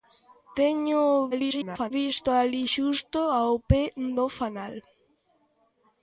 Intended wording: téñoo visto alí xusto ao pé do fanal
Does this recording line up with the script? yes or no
no